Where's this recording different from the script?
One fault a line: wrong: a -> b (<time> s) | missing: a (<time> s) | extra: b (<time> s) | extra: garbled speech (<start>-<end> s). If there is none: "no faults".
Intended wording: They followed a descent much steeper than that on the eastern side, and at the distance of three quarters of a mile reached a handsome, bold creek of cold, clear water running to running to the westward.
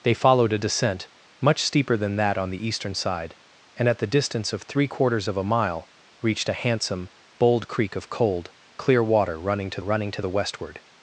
no faults